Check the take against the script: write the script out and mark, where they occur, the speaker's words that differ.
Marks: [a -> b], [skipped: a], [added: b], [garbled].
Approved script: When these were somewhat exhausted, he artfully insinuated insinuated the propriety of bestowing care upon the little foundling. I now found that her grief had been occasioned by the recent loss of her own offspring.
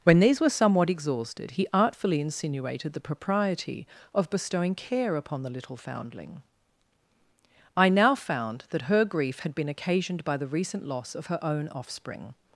When these were somewhat exhausted, he artfully insinuated [skipped: insinuated] the propriety of bestowing care upon the little foundling. I now found that her grief had been occasioned by the recent loss of her own offspring.